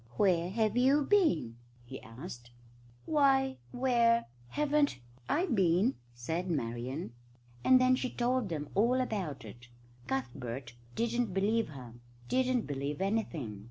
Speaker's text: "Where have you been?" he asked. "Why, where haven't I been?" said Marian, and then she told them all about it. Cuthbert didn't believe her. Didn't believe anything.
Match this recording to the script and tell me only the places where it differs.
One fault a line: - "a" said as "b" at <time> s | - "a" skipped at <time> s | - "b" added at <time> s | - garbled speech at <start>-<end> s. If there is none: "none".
none